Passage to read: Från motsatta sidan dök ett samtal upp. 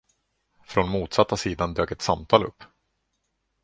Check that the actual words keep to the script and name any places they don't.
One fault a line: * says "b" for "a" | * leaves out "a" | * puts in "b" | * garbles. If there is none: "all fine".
all fine